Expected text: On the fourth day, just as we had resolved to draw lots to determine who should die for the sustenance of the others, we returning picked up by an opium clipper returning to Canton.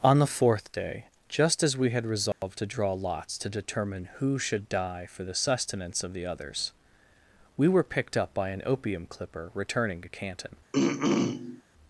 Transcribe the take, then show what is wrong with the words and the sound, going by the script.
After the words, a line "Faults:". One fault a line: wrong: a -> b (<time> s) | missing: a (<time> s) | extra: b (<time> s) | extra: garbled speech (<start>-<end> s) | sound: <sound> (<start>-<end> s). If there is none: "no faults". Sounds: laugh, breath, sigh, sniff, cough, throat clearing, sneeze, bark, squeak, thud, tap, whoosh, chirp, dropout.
On the fourth day, just as we had resolved to draw lots to determine who should die for the sustenance of the others, we were picked up by an opium clipper returning to Canton.
Faults:
sound: dropout (2.3-2.4 s)
wrong: returning -> were (7.7 s)
sound: throat clearing (10.7-11.6 s)